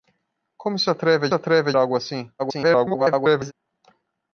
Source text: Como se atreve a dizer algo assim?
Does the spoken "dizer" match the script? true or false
false